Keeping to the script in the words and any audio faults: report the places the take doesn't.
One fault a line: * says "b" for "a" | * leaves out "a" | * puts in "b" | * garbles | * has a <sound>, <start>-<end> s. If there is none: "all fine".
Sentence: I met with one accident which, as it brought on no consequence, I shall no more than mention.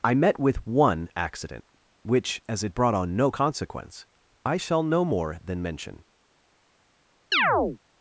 * has a chirp, 7.3-7.8 s